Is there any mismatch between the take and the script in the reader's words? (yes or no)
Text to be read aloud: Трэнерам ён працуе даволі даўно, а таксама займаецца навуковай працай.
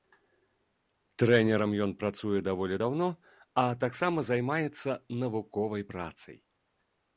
no